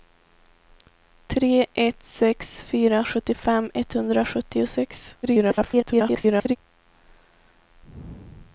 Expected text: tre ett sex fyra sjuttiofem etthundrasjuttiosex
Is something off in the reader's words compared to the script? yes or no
yes